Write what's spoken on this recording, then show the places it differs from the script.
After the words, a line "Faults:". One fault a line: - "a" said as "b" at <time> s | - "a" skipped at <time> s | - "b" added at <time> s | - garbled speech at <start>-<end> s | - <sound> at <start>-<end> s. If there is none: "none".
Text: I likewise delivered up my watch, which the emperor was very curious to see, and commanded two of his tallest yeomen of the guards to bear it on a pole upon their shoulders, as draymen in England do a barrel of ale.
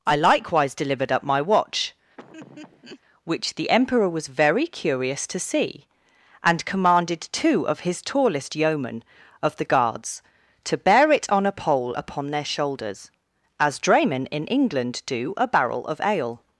I likewise delivered up my watch, which the emperor was very curious to see, and commanded two of his tallest yeomen of the guards to bear it on a pole upon their shoulders, as draymen in England do a barrel of ale.
Faults:
- laugh at 2.2-3.0 s